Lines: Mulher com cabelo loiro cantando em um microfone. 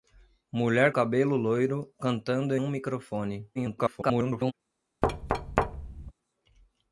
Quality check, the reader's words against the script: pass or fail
fail